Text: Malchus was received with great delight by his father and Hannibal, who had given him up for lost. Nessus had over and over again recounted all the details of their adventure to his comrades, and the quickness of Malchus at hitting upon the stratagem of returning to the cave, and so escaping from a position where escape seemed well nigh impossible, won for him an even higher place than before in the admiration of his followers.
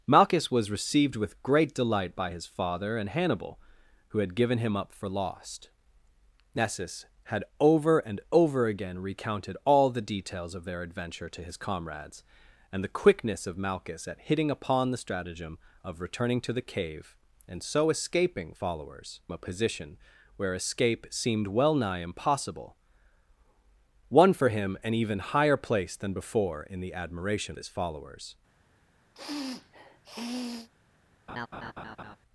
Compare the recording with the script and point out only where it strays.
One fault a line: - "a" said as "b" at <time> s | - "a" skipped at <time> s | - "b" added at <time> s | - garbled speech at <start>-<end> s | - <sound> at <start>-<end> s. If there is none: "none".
- "from" said as "followers" at 18.5 s
- "of" skipped at 27.6 s
- sniff at 29.2-30.7 s
- laugh at 31.3-32.2 s